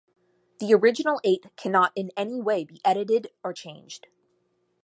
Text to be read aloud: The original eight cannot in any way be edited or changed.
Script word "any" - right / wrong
right